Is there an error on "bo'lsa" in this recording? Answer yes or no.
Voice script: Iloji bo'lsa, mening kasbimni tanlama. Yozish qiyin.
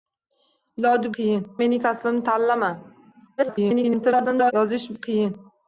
yes